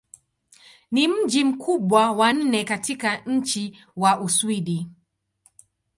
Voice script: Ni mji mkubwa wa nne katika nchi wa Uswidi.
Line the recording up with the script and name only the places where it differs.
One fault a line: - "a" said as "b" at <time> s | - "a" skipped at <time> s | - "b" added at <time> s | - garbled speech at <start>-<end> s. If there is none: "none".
none